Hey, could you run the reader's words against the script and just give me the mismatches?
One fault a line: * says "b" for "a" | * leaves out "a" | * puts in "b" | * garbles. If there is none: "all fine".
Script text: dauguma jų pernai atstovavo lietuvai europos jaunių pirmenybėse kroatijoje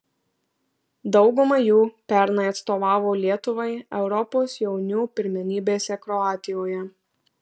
all fine